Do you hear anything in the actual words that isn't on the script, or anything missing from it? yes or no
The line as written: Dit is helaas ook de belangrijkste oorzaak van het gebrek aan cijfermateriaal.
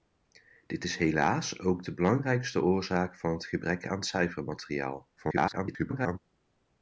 yes